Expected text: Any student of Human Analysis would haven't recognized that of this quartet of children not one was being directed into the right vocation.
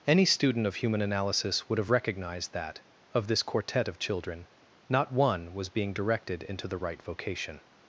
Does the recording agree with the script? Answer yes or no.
no